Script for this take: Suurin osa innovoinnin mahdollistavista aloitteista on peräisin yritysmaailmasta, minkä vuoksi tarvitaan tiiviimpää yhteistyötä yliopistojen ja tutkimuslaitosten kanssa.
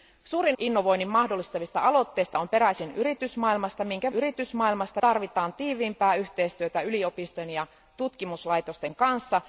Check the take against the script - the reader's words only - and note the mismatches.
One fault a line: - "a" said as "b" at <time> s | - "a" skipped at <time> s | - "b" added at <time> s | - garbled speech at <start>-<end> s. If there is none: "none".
- "osa" skipped at 0.6 s
- "vuoksi" said as "yritysmaailmasta" at 4.1 s